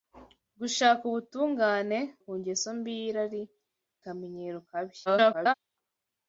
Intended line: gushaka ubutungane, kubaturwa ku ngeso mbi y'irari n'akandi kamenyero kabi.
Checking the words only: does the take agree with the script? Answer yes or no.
no